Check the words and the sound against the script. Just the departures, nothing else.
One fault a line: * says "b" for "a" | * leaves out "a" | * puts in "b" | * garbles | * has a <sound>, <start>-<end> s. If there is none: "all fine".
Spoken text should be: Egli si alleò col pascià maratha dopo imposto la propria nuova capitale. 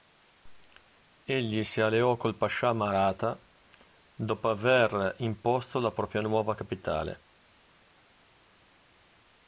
* puts in "aver"